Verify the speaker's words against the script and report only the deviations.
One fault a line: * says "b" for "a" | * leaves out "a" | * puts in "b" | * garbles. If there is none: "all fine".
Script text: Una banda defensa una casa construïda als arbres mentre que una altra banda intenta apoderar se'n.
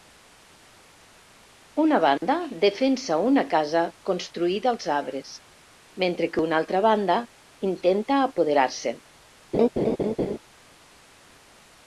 all fine